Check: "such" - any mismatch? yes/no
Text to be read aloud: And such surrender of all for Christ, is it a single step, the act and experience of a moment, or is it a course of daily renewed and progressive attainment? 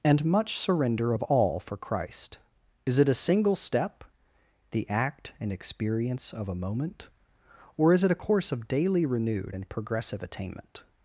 yes